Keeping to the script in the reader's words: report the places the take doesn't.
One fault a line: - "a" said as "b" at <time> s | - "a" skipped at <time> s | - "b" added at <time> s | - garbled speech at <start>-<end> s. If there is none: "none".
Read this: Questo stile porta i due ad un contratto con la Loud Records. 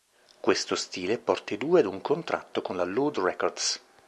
none